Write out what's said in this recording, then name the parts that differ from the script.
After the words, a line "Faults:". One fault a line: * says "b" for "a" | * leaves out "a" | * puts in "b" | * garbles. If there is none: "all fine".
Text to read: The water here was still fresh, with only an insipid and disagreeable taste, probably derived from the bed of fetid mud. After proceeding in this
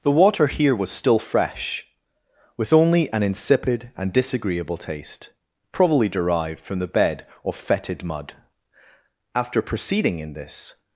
The water here was still fresh, with only an insipid and disagreeable taste, probably derived from the bed of fetid mud. After proceeding in this
Faults:
all fine